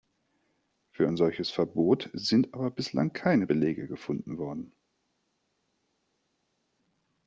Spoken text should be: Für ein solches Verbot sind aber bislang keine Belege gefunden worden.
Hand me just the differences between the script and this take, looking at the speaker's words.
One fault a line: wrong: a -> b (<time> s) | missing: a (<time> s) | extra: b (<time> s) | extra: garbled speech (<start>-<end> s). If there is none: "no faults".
no faults